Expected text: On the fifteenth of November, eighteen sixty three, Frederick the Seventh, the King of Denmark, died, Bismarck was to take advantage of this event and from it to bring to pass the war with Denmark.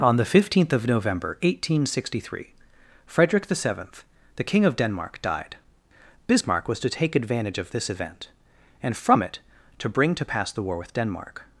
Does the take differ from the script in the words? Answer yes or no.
no